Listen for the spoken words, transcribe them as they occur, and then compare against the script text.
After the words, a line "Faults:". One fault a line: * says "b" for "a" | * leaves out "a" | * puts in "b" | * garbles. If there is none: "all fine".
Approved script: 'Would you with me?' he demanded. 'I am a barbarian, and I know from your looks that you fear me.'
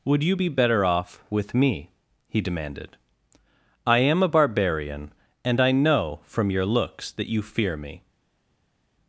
'Would you be better off with me?' he demanded. 'I am a barbarian, and I know from your looks that you fear me.'
Faults:
* puts in "be better off"